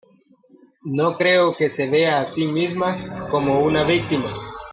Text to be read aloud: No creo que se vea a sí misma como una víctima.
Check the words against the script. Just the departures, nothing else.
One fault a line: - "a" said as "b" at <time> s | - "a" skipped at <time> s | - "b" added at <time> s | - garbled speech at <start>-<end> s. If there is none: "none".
none